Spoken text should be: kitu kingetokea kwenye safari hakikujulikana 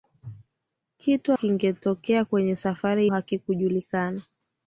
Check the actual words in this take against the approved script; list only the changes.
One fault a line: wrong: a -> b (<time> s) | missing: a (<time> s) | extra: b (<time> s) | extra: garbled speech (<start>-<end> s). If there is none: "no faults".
no faults